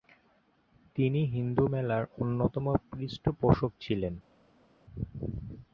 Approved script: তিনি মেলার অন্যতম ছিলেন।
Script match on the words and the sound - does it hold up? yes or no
no